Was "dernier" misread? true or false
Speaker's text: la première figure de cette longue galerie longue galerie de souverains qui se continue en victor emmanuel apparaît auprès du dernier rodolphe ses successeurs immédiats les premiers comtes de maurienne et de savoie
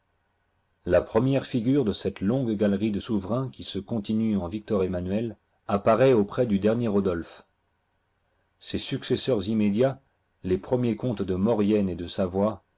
false